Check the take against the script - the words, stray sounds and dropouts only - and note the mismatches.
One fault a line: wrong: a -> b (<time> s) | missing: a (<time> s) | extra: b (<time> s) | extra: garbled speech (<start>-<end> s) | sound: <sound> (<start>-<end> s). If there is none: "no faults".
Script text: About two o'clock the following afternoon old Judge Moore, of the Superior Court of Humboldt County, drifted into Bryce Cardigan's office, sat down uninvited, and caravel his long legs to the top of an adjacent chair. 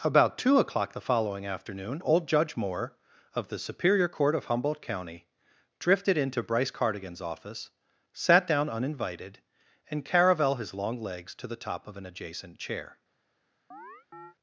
sound: chirp (13.7-14.4 s)